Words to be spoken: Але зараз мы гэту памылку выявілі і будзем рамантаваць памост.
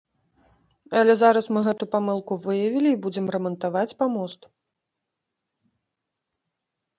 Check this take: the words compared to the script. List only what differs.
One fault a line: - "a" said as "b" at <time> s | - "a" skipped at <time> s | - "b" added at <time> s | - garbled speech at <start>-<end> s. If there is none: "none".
none